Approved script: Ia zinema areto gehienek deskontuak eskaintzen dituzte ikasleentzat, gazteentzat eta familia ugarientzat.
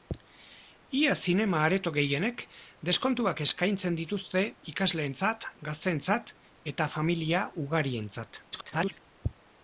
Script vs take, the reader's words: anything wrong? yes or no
yes